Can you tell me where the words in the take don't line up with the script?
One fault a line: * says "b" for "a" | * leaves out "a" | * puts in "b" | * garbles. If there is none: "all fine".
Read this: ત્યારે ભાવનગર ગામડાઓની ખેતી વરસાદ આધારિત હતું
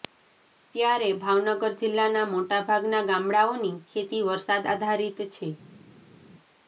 * puts in "જિલ્લાના મોટાભાગના"
* says "છે" for "હતું"